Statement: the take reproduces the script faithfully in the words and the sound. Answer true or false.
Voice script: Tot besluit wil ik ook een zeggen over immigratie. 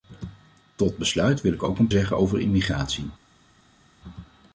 true